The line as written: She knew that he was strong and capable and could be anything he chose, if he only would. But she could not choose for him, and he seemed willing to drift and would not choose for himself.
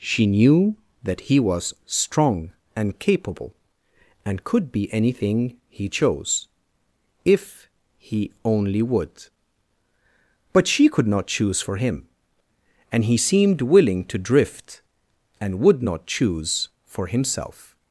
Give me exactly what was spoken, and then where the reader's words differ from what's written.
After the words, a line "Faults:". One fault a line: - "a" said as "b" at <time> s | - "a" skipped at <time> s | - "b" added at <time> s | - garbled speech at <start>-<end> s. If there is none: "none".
She knew that he was strong and capable and could be anything he chose, if he only would. But she could not choose for him, and he seemed willing to drift and would not choose for himself.
Faults:
none